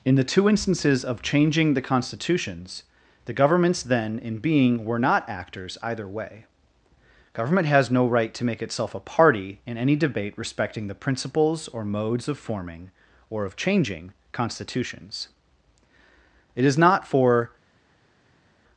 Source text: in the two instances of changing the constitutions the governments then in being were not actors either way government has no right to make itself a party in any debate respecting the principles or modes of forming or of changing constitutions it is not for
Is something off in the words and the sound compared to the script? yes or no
no